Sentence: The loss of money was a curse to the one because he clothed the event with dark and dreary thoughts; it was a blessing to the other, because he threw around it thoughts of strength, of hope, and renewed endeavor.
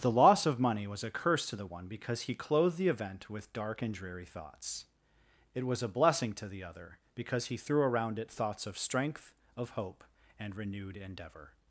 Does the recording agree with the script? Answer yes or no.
yes